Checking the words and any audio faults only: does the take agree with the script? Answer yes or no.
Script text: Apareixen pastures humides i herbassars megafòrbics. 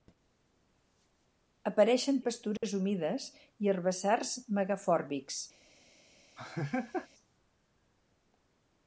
no